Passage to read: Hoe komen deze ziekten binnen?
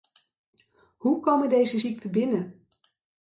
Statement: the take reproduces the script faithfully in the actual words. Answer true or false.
true